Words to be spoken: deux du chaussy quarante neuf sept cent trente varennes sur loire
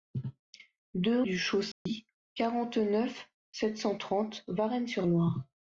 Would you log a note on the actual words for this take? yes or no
no